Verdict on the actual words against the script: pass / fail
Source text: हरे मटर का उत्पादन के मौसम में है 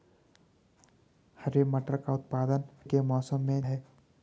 pass